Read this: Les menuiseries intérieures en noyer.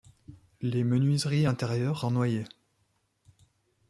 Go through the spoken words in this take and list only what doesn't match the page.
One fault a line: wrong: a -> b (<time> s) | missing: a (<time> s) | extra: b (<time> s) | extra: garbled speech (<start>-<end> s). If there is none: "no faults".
no faults